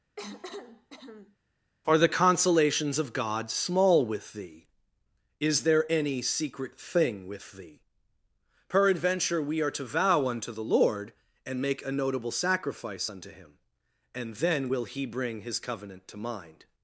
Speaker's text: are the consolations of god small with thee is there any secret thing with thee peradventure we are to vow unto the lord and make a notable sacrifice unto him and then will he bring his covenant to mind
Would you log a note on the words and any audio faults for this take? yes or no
yes